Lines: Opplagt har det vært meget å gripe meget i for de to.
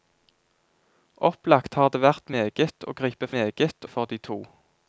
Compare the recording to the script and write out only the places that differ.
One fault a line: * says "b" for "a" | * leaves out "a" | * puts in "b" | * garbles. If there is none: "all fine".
all fine